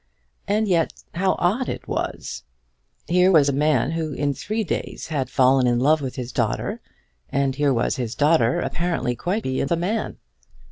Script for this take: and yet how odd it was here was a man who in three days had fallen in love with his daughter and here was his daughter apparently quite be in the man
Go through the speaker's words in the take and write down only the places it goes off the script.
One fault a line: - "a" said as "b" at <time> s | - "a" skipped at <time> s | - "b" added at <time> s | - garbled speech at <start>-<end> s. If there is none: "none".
none